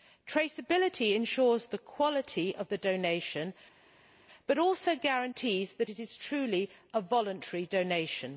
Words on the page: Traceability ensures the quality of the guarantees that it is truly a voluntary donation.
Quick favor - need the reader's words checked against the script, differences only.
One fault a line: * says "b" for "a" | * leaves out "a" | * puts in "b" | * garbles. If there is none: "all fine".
* puts in "donation but also"